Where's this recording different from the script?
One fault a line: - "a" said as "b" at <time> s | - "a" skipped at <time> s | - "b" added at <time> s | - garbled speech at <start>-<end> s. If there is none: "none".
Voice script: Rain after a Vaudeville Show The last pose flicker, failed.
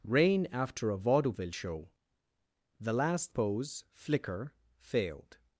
none